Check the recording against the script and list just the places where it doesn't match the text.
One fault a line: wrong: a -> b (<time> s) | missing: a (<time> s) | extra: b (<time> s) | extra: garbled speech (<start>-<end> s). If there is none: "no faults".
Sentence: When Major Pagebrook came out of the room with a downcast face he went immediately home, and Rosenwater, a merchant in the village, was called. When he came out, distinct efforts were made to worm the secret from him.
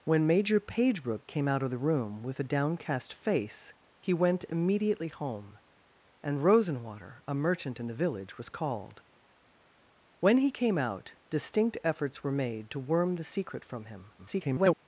extra: garbled speech (14.2-14.8 s)